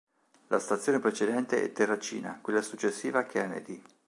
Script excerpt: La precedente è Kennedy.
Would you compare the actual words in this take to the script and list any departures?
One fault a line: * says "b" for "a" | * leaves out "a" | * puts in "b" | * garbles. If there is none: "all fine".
* puts in "stazione"
* puts in "Terracina quella successiva"